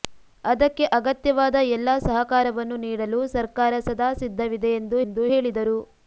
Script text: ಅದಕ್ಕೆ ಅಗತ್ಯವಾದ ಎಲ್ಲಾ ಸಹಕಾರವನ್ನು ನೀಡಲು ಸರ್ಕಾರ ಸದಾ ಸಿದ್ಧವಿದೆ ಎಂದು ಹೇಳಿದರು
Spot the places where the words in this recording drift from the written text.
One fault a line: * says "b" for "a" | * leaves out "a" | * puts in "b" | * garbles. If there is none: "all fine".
* puts in "ಎಂದು"